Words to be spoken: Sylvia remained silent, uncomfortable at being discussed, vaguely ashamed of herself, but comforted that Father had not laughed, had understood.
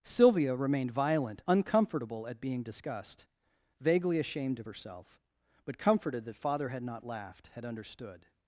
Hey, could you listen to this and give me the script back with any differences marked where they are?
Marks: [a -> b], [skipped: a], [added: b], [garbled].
Sylvia remained [silent, -> violent] uncomfortable at being discussed, vaguely ashamed of herself, but comforted that Father had not laughed, had understood.